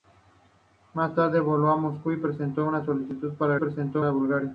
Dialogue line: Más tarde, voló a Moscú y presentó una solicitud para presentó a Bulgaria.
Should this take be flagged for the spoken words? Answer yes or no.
no